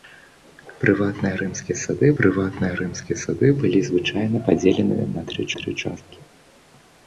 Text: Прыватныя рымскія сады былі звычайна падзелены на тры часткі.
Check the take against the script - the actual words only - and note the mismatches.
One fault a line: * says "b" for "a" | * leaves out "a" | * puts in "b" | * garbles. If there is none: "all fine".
* puts in "прыватныя рымскія сады"
* puts in "тры"